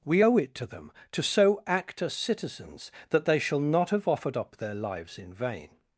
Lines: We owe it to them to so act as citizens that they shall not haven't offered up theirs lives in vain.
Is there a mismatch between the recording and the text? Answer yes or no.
yes